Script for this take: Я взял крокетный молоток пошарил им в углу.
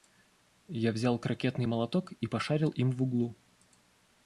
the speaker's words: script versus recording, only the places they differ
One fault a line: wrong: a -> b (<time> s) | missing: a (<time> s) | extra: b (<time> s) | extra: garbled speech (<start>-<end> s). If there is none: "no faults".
extra: и (2.1 s)